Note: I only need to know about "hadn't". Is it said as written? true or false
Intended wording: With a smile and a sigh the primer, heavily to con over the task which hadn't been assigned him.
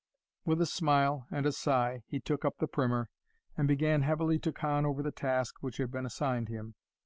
false